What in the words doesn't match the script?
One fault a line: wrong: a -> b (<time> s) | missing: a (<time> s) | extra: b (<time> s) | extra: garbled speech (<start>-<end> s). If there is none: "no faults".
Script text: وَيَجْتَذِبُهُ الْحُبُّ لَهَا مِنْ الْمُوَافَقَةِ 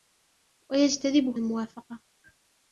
missing: الْحُبُّ لَهَا مِنْ (1.4 s)